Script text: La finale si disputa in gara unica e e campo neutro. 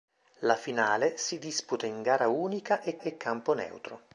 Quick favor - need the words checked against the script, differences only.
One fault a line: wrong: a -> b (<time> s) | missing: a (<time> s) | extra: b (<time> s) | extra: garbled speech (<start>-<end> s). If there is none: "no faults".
no faults